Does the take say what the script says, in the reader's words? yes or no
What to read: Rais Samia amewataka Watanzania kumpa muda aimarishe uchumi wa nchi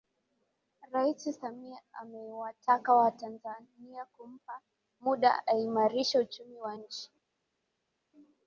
yes